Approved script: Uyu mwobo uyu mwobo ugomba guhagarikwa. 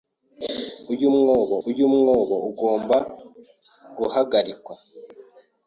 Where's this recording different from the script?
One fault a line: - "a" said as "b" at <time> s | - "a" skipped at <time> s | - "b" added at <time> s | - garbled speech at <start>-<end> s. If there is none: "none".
none